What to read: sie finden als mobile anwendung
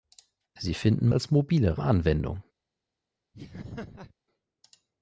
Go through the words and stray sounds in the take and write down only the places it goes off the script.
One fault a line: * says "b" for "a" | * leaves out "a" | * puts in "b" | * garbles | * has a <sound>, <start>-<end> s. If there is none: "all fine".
* has a laugh, 3.3-4.1 s